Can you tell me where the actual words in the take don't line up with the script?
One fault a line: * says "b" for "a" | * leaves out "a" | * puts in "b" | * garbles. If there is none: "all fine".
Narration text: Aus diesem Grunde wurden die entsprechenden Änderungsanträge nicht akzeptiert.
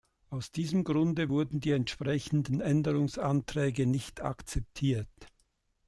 all fine